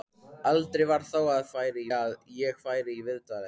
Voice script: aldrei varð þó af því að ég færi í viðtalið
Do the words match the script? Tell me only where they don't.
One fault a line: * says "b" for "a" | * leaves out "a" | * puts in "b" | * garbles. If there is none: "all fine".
* says "færi" for "því"